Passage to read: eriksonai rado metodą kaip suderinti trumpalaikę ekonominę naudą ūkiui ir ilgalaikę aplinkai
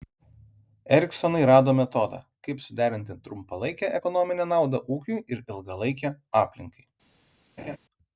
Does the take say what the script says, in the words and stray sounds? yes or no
no